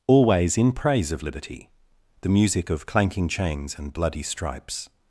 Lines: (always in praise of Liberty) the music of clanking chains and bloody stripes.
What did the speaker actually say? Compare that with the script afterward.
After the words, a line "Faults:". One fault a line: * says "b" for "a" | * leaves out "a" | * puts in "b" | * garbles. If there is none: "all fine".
(always in praise of Liberty) the music of clanking chains and bloody stripes.
Faults:
all fine